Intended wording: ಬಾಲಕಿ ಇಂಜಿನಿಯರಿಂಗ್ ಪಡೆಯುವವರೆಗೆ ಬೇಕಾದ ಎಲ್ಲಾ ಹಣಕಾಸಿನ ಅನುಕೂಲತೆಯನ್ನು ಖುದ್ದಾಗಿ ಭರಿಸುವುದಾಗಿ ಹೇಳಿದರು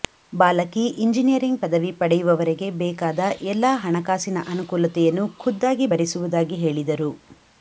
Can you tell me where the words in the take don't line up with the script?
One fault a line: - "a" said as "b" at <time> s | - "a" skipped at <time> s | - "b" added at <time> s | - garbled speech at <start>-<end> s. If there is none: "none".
- "ಪದವಿ" added at 1.6 s